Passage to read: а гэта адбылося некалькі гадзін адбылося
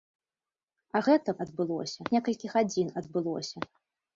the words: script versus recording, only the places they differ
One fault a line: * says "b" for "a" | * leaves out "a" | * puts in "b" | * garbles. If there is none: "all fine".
all fine